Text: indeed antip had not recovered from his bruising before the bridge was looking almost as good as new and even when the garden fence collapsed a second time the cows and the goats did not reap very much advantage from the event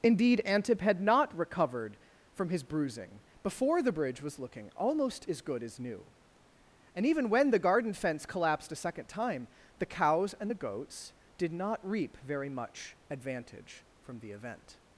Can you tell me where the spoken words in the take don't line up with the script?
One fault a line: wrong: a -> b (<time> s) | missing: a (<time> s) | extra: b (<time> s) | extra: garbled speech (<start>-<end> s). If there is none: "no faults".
no faults